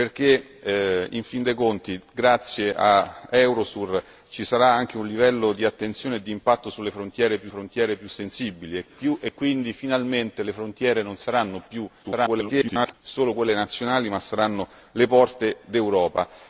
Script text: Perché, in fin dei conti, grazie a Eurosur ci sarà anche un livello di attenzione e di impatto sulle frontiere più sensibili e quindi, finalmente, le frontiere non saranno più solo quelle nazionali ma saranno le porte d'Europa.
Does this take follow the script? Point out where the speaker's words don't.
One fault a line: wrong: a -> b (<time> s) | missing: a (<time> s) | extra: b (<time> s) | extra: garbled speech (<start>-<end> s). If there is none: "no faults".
extra: frontiere più (7.5 s)
extra: garbled speech (12.0-12.9 s)